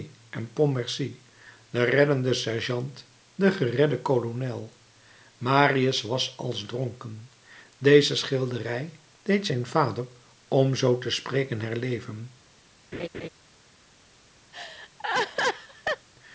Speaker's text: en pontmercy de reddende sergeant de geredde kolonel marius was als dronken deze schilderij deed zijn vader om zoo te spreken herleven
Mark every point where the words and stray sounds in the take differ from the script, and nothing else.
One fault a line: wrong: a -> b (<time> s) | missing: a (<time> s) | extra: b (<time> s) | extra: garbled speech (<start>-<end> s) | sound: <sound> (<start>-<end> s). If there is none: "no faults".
sound: laugh (12.9-13.3 s)
sound: laugh (14.5-16.1 s)